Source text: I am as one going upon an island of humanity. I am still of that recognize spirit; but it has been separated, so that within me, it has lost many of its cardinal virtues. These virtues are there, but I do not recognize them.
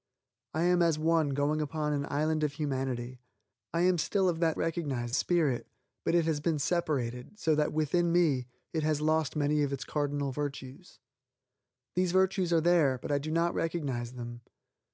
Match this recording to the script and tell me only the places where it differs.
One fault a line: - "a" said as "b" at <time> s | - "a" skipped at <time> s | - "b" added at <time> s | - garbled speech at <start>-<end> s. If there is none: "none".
none